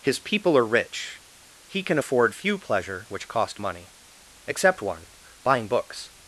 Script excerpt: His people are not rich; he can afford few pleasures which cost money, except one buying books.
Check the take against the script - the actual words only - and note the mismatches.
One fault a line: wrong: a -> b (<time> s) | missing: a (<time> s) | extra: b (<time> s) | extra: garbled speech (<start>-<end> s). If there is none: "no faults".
missing: not (0.7 s)
wrong: pleasures -> pleasure (2.6 s)